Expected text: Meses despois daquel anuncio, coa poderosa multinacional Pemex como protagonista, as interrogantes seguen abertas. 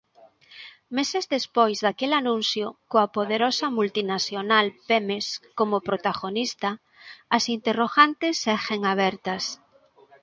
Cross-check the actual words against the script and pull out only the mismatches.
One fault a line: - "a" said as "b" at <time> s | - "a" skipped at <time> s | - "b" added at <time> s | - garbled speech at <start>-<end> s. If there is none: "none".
none